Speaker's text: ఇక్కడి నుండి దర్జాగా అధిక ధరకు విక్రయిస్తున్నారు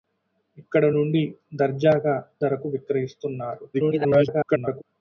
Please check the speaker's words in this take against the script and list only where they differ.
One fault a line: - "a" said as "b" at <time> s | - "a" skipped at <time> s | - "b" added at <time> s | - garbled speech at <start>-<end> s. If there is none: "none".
- "అధిక" skipped at 2.2 s
- garbled speech at 3.7-4.8 s